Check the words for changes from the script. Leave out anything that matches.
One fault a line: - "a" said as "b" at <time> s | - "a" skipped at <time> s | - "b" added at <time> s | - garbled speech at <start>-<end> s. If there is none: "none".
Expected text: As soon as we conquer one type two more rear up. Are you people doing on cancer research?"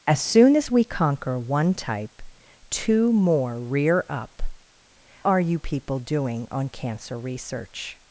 none